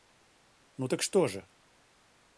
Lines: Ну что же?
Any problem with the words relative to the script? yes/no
yes